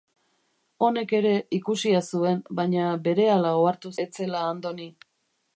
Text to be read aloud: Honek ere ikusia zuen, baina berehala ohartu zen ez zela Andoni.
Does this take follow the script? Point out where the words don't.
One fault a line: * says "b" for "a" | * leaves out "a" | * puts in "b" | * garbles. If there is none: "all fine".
* leaves out "zen"